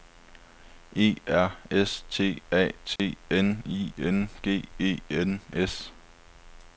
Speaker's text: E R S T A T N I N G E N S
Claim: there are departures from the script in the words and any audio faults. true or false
true